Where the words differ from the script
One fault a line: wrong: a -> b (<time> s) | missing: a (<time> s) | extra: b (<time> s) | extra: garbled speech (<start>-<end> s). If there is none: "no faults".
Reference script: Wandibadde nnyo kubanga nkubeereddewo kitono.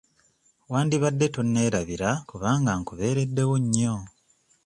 wrong: nnyo -> tonneerabira (1.4 s)
wrong: kitono -> nnyo (3.6 s)